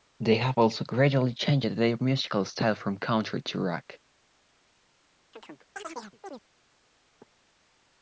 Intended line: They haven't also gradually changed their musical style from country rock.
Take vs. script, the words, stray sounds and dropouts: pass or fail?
fail